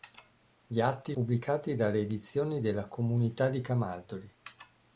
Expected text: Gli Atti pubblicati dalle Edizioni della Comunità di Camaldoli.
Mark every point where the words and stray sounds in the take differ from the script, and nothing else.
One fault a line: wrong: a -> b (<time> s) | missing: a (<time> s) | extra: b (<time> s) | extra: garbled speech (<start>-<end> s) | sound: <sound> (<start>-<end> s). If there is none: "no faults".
no faults